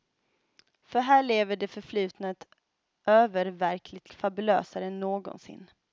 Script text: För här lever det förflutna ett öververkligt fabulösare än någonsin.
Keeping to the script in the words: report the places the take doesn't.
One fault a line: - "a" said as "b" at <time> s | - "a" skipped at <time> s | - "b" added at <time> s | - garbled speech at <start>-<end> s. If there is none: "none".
none